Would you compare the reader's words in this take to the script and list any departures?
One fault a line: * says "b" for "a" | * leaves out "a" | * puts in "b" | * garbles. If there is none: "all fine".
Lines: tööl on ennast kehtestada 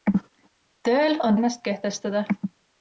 all fine